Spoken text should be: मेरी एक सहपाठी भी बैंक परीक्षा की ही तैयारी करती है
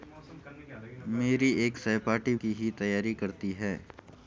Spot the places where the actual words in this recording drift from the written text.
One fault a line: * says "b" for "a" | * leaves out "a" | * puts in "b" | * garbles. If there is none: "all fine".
* leaves out "भी बैंक परीक्षा"